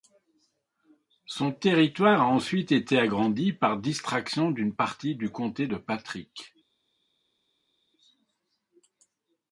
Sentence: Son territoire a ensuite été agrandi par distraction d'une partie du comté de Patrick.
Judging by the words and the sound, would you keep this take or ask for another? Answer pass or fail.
pass